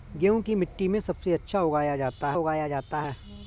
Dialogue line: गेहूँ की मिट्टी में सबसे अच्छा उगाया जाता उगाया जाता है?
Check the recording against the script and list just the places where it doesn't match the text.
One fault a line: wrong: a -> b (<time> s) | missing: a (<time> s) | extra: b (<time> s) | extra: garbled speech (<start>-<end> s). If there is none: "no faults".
no faults